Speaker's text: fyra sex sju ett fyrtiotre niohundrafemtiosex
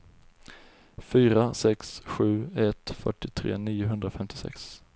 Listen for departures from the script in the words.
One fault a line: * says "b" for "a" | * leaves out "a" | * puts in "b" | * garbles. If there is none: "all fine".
all fine